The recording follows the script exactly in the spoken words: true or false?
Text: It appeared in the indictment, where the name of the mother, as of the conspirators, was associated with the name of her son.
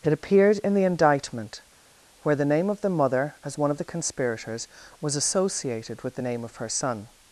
false